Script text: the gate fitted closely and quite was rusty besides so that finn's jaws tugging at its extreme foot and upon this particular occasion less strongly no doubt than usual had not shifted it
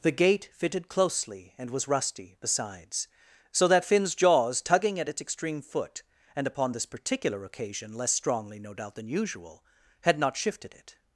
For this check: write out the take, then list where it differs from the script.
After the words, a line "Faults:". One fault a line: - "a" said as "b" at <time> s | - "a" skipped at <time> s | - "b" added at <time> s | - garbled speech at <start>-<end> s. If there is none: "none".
the gate fitted closely and was rusty besides so that finn's jaws tugging at its extreme foot and upon this particular occasion less strongly no doubt than usual had not shifted it
Faults:
- "quite" skipped at 1.7 s